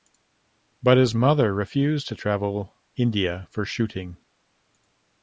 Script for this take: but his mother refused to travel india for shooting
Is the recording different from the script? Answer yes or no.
no